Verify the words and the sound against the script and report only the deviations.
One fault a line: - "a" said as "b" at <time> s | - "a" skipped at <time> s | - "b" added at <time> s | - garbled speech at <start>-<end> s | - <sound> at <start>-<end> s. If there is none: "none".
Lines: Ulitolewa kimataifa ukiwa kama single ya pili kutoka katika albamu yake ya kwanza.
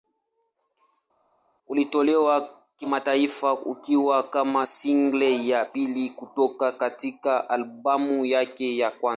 none